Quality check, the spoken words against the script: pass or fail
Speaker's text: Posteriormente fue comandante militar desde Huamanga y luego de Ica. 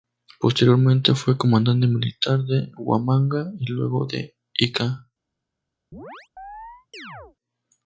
fail